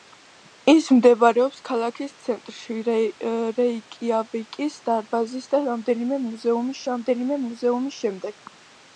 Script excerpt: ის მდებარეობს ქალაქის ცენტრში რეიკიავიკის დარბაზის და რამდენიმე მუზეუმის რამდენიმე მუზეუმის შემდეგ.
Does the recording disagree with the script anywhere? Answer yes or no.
no